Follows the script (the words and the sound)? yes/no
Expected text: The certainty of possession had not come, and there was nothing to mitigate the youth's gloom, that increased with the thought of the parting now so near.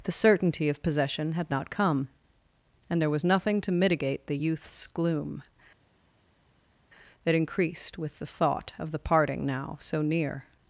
yes